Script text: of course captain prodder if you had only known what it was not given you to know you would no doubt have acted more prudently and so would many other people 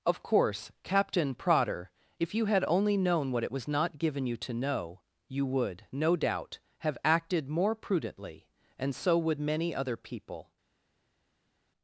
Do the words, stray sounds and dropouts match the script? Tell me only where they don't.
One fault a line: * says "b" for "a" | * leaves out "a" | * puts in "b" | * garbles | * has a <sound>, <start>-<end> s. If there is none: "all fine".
all fine